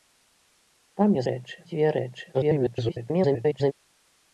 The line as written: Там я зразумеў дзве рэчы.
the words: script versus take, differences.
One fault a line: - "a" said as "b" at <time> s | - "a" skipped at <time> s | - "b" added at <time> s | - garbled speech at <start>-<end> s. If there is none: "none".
- "зразумеў" said as "рэчы" at 1.3 s
- garbled speech at 2.3-3.7 s